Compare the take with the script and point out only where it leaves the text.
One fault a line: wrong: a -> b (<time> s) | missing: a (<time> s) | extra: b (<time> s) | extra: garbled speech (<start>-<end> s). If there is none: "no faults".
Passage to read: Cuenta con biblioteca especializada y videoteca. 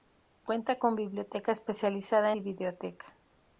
no faults